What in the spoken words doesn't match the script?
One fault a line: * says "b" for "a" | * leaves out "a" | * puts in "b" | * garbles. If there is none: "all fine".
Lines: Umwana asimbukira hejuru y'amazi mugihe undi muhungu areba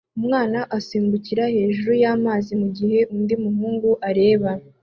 all fine